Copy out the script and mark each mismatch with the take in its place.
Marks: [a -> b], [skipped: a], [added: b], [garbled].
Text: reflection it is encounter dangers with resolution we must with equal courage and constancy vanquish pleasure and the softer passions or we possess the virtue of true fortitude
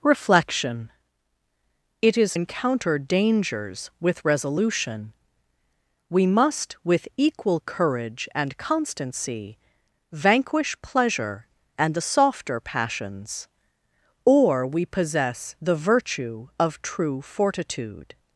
reflection it is encounter dangers with resolution we must with equal courage and constancy vanquish pleasure and the softer passions or we possess the virtue of true fortitude